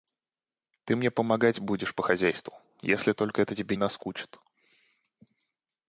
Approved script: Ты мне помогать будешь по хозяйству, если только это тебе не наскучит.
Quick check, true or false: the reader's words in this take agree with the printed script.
false